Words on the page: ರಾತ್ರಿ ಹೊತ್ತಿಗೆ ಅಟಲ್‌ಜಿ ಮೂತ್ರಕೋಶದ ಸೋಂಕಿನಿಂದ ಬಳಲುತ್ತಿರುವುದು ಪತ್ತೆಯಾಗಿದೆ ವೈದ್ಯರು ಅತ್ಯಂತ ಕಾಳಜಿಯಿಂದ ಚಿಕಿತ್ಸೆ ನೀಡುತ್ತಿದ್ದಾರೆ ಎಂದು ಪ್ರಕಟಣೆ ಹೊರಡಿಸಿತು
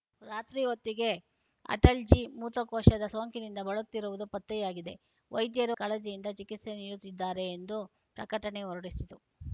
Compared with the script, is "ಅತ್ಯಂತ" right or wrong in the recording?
wrong